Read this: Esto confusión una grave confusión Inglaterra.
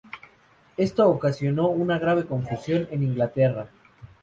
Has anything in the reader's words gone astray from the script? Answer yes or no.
yes